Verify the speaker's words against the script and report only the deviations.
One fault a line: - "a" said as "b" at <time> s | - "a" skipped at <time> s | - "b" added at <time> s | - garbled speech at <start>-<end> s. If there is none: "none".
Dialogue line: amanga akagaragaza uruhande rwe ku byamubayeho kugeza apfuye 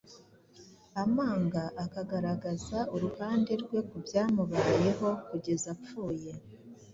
none